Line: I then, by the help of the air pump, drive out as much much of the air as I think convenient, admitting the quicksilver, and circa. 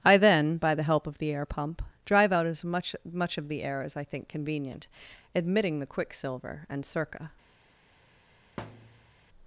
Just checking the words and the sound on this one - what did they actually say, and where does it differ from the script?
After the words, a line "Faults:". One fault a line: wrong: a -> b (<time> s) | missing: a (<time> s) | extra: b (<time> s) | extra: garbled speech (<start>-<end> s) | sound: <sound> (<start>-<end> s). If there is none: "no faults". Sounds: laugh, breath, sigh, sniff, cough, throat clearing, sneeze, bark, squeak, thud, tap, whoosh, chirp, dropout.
I then, by the help of the air pump, drive out as much much of the air as I think convenient, admitting the quicksilver, and circa.
Faults:
sound: thud (8.6-9.1 s)